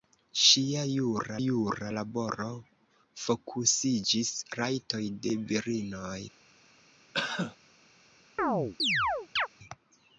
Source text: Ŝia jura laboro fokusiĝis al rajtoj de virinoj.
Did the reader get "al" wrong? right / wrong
wrong